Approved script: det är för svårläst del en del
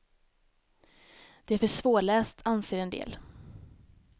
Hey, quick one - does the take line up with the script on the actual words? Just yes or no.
no